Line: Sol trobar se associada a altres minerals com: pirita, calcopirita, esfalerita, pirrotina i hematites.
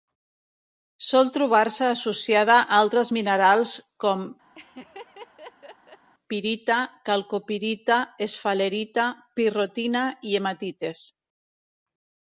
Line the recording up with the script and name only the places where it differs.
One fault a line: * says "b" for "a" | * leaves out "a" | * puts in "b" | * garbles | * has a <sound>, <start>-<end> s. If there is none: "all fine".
* has a laugh, 4.5-6.1 s